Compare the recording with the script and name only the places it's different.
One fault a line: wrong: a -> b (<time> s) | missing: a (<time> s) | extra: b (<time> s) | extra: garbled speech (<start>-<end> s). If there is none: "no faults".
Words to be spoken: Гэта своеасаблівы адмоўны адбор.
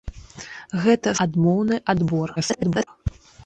missing: своеасаблівы (1.1 s)
extra: garbled speech (2.4-2.9 s)